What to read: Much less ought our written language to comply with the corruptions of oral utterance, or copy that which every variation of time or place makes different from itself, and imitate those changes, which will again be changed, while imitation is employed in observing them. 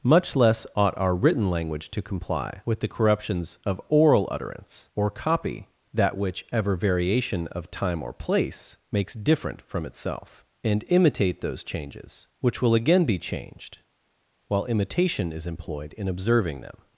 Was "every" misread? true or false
true